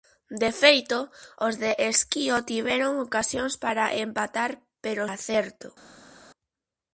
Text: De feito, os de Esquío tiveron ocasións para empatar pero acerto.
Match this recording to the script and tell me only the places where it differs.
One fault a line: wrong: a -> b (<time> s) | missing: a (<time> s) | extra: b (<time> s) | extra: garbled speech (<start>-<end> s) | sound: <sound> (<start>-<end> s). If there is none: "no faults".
no faults